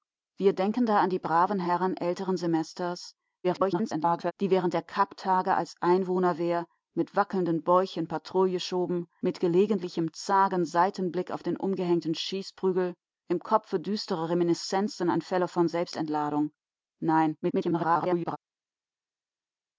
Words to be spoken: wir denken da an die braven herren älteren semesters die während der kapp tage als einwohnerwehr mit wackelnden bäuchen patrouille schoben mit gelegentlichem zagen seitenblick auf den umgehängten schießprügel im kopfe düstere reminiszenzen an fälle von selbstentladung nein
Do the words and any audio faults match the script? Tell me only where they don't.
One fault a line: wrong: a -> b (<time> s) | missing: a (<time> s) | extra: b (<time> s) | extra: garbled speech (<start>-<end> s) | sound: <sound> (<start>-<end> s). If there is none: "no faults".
extra: garbled speech (3.4-4.3 s)
extra: garbled speech (17.4-18.4 s)